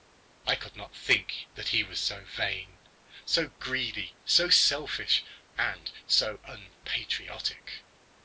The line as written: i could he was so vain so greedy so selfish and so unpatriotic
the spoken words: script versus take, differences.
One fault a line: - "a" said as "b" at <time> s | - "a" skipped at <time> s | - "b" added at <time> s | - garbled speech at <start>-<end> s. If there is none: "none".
- "not think that" added at 0.8 s